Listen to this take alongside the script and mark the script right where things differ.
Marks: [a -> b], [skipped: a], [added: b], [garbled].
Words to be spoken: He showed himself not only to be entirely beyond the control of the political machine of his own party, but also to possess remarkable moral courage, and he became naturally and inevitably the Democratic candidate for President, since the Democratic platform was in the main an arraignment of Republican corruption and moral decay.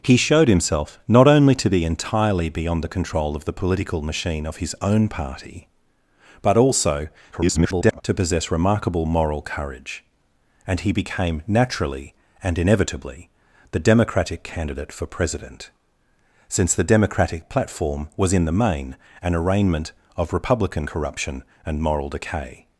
He showed himself not only to be entirely beyond the control of the political machine of his own party, but also [garbled] to possess remarkable moral courage, and he became naturally and inevitably the Democratic candidate for President, since the Democratic platform was in the main an arraignment of Republican corruption and moral decay.